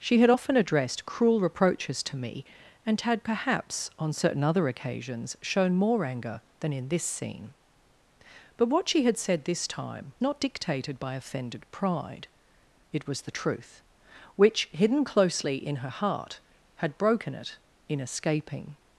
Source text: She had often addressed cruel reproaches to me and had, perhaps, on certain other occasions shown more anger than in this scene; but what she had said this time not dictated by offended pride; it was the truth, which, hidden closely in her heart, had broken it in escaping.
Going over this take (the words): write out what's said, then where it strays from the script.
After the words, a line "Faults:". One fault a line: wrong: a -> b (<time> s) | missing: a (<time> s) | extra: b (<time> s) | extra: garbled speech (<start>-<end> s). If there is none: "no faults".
She had often addressed cruel reproaches to me and had, perhaps, on certain other occasions shown more anger than in this scene; but what she had said this time not dictated by offended pride; it was the truth, which, hidden closely in her heart, had broken it in escaping.
Faults:
no faults